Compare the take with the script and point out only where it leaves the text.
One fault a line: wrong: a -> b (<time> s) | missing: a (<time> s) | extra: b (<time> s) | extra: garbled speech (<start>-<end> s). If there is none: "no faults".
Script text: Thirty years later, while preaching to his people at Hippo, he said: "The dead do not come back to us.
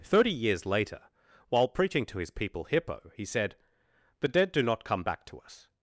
missing: at (2.6 s)